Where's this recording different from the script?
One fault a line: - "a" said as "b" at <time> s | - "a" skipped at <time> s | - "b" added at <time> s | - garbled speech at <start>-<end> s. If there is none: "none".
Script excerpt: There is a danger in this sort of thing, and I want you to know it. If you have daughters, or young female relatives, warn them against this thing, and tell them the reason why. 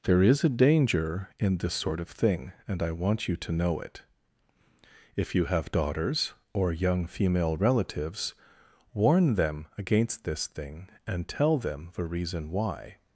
none